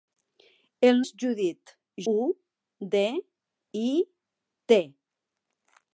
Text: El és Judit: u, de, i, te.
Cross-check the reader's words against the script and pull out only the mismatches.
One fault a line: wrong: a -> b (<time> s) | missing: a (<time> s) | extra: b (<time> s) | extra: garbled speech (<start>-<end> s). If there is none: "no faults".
no faults